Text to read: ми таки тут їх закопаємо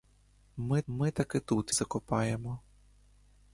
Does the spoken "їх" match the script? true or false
false